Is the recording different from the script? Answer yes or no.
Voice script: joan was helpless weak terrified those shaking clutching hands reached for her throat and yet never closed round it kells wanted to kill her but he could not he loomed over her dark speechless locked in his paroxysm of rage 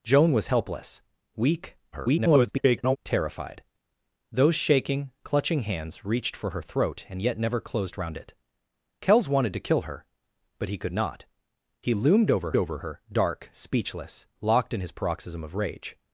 yes